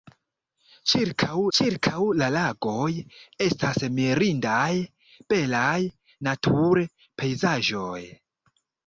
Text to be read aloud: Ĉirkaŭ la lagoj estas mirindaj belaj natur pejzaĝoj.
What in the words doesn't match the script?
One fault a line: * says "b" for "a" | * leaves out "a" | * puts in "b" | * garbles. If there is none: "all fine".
* puts in "ĉirkaŭ"